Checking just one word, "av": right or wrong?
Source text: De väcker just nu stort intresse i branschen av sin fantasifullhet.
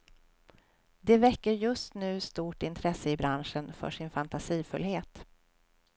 wrong